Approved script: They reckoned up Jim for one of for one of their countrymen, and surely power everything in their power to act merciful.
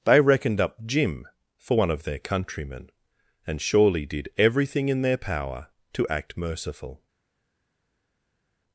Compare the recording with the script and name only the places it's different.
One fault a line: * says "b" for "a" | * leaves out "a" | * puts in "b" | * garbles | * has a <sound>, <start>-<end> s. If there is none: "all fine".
* leaves out "for one of"
* says "did" for "power"